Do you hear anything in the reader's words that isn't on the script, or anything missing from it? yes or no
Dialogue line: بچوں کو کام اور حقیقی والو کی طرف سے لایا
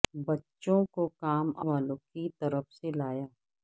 yes